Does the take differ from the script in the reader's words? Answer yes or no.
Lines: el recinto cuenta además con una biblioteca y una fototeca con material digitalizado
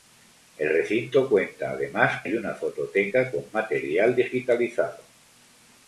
yes